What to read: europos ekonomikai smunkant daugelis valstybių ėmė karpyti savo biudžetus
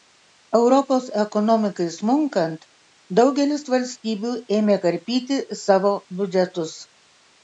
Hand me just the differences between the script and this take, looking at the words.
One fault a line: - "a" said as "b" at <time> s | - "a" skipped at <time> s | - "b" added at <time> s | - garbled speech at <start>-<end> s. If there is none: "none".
none